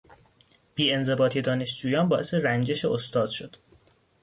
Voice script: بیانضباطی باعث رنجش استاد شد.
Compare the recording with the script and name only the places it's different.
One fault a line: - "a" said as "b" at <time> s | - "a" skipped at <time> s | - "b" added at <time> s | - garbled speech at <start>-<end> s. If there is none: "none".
- "دانشجویان" added at 1.4 s